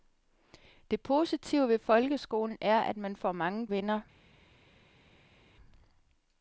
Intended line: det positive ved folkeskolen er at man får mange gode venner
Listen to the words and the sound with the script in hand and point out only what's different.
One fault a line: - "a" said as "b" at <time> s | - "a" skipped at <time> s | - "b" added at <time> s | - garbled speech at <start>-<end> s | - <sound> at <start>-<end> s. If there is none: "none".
- "gode" skipped at 3.7 s